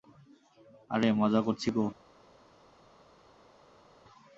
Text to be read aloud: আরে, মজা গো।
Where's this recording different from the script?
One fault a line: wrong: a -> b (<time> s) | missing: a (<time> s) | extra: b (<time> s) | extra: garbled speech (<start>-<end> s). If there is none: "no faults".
extra: করছি (1.4 s)